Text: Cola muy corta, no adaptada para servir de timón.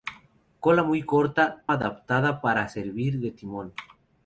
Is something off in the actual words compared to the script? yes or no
yes